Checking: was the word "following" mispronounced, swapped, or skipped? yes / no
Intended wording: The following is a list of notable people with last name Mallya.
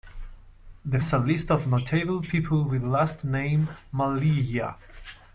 yes